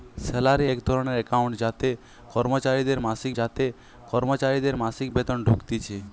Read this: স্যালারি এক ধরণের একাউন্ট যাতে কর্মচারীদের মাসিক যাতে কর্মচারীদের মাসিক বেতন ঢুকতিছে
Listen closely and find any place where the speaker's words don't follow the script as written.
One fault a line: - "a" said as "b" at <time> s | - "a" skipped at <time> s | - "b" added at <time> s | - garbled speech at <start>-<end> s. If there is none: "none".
none